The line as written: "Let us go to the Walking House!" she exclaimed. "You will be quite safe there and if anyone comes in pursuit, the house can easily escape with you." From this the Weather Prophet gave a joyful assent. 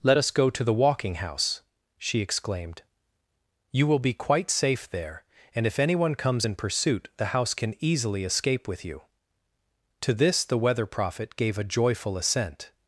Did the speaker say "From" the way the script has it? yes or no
no